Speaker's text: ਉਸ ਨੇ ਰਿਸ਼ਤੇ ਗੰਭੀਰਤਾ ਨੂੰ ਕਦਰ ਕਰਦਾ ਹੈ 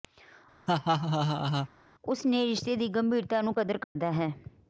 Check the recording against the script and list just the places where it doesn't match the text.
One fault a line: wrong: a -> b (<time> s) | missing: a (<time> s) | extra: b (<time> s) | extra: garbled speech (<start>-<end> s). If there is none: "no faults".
extra: ਦੀ (2.8 s)